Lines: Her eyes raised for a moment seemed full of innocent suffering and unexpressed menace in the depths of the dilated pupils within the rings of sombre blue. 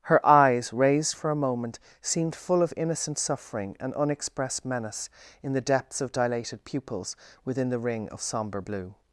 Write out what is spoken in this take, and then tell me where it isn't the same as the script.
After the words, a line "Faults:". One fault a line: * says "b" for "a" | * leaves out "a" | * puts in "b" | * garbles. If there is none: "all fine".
Her eyes raised for a moment seemed full of innocent suffering and unexpressed menace in the depths of dilated pupils within the ring of sombre blue.
Faults:
* leaves out "the"
* says "ring" for "rings"